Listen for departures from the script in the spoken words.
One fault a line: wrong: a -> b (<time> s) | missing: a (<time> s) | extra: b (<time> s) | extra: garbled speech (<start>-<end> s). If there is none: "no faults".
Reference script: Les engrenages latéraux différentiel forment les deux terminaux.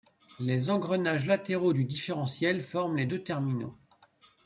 extra: du (1.7 s)